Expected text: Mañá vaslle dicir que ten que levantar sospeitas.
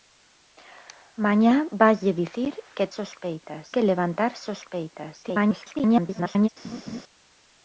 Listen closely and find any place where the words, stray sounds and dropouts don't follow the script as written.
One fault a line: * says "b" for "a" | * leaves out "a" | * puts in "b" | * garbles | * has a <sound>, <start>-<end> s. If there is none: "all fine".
* says "sospeitas" for "ten"
* garbles
* has a laugh, 6.6-7.0 s